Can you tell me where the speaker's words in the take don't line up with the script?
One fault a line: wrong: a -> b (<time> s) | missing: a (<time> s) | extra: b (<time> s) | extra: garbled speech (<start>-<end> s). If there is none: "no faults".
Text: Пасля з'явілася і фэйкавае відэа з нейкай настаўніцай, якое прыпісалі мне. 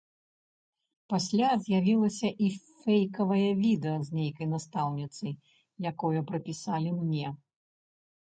no faults